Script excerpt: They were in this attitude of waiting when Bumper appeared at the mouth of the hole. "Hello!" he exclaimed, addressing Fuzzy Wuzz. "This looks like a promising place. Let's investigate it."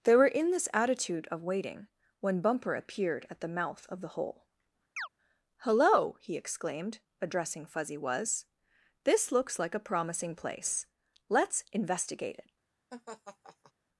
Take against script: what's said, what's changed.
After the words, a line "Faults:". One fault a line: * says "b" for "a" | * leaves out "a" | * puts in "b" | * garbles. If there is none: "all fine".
They were in this attitude of waiting when Bumper appeared at the mouth of the hole. "Hello!" he exclaimed, addressing Fuzzy Wuzz. "This looks like a promising place. Let's investigate it."
Faults:
all fine